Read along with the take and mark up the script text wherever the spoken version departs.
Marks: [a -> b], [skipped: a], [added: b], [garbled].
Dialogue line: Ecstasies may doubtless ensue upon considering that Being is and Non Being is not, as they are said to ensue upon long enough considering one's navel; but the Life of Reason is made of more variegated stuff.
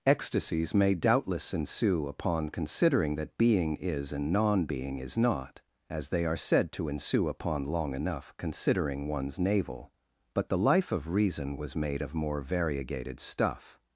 Ecstasies may doubtless ensue upon considering that Being is and Non Being is not, as they are said to ensue upon long enough considering one's navel; but the Life of Reason [is -> was] made of more variegated stuff.